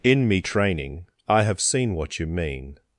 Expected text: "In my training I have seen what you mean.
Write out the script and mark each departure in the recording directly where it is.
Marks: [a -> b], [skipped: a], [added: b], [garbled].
"In [my -> me] training I have seen what you mean.